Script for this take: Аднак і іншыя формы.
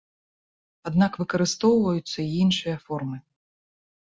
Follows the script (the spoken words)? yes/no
no